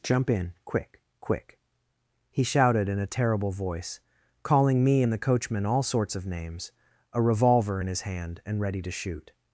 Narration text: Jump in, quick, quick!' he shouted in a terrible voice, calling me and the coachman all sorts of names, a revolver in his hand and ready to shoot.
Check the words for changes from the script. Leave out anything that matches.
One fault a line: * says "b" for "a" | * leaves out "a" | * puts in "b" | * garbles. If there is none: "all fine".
all fine